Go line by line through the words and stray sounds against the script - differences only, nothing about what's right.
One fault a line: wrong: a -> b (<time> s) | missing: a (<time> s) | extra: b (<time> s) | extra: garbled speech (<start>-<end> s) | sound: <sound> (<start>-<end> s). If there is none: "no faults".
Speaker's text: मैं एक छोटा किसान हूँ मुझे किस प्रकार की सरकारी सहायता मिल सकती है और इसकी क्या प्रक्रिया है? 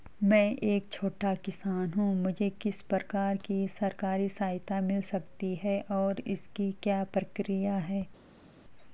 no faults